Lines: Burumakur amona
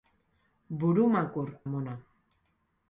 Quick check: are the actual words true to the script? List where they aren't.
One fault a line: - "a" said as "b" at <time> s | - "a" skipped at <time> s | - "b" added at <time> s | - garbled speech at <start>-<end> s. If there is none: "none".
none